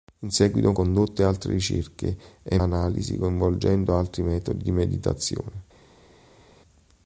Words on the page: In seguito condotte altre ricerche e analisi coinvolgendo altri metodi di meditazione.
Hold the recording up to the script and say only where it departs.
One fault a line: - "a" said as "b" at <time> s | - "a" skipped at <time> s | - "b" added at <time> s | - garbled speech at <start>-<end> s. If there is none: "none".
none